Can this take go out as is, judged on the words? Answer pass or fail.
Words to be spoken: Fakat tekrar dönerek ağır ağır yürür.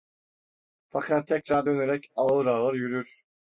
pass